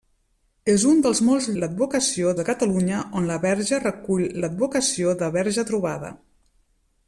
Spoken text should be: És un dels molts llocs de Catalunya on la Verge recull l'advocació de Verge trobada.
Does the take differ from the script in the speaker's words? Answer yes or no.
yes